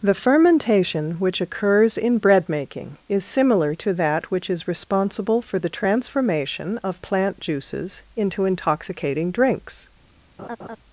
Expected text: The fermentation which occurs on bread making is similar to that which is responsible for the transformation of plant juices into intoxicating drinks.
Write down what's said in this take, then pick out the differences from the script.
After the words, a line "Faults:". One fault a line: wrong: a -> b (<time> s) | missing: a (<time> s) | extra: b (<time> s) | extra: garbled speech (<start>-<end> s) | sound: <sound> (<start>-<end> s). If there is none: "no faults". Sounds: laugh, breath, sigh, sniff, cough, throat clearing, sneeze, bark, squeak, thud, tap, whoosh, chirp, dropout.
The fermentation which occurs in bread making is similar to that which is responsible for the transformation of plant juices into intoxicating drinks.
Faults:
wrong: on -> in (1.9 s)
sound: laugh (10.4-10.8 s)